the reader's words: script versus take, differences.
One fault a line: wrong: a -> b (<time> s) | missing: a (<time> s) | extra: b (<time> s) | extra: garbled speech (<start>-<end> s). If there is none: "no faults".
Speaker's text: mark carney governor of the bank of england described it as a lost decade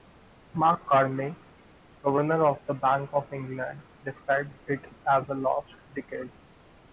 no faults